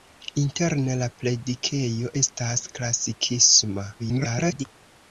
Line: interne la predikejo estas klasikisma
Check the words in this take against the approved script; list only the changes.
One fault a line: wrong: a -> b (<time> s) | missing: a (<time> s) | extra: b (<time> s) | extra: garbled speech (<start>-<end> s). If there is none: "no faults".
extra: garbled speech (4.0-4.7 s)